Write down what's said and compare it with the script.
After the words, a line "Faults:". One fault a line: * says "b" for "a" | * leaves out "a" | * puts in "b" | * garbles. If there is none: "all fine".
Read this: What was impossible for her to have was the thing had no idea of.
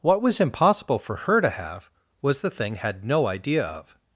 What was impossible for her to have was the thing had no idea of.
Faults:
all fine